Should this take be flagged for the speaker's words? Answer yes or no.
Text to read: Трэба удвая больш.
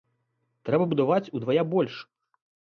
yes